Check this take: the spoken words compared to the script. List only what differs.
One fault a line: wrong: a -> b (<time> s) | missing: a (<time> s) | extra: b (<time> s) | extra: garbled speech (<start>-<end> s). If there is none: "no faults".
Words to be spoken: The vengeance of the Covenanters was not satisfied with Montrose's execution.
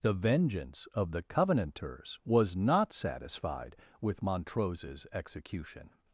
no faults